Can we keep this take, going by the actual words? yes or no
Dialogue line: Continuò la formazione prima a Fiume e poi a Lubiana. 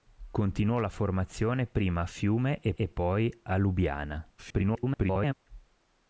no